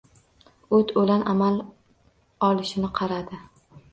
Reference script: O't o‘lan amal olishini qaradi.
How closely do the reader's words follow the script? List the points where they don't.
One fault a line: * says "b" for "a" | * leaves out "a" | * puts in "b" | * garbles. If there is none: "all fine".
all fine